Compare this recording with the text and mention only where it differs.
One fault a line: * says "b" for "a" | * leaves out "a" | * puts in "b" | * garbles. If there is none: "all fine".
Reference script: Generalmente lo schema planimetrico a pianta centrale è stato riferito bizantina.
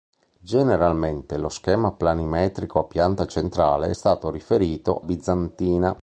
all fine